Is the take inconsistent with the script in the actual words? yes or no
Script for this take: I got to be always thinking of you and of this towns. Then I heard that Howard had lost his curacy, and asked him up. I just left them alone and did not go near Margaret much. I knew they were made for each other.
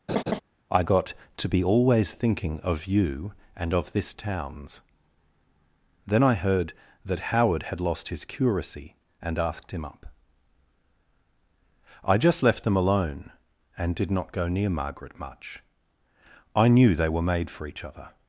no